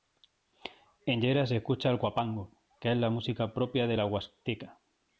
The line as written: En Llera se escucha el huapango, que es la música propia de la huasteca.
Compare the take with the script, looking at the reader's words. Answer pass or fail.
pass